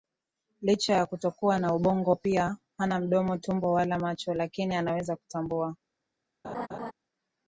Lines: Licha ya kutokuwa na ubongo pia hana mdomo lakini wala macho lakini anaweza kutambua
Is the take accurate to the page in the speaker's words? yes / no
no